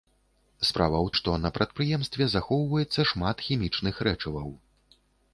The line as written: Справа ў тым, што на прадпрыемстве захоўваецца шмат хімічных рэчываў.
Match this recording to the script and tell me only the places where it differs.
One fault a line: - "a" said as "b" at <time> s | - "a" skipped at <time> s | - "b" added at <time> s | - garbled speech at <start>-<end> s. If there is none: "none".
- "тым" skipped at 1.1 s